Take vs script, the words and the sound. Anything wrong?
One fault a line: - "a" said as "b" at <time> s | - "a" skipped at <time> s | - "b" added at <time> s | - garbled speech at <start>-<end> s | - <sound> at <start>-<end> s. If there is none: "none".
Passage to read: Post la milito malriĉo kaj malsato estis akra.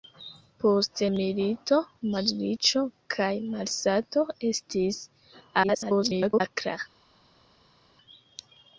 - "la" skipped at 1.0 s
- garbled speech at 5.6-6.4 s